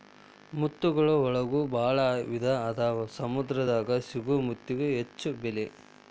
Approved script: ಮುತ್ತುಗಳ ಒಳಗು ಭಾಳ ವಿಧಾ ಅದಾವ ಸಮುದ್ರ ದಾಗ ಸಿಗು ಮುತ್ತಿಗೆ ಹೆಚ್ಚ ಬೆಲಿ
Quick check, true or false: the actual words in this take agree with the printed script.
true